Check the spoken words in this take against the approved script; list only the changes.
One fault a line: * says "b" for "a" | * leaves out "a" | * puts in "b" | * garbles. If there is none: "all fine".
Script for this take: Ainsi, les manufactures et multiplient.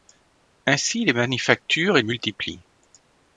all fine